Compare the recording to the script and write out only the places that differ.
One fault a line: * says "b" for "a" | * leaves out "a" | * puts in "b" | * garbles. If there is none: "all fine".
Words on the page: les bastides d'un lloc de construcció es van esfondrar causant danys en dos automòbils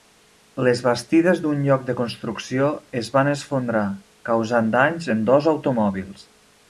all fine